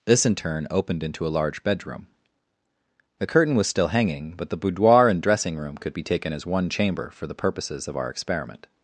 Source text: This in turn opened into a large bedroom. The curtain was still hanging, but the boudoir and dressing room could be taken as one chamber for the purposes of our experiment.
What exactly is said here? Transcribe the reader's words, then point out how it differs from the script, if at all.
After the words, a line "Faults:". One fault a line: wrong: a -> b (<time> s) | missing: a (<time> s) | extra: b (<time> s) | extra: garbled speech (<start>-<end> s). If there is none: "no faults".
This in turn opened into a large bedroom. The curtain was still hanging, but the boudoir and dressing room could be taken as one chamber for the purposes of our experiment.
Faults:
no faults